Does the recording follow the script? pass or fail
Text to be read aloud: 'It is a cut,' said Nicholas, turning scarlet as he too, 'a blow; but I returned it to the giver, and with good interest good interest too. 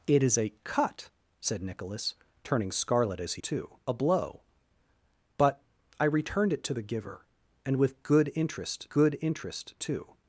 pass